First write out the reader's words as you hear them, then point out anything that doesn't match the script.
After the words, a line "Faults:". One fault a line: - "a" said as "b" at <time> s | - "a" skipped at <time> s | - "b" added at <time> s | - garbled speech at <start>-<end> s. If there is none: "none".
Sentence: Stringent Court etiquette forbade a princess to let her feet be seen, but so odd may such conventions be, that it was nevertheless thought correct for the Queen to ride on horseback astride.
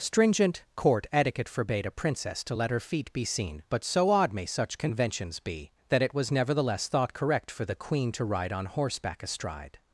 Stringent Court etiquette forbade a princess to let her feet be seen, but so odd may such conventions be, that it was nevertheless thought correct for the Queen to ride on horseback astride.
Faults:
none